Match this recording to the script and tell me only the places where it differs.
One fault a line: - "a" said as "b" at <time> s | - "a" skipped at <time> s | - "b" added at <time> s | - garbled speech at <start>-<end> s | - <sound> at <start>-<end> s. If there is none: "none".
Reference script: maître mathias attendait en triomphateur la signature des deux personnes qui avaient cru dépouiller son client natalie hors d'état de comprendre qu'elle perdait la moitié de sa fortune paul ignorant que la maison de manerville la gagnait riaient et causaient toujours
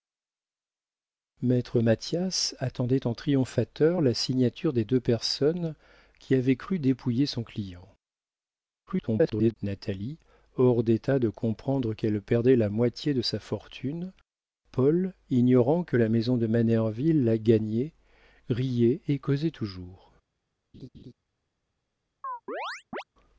- garbled speech at 8.9-9.5 s
- laugh at 20.7-21.1 s
- chirp at 22.2-23.0 s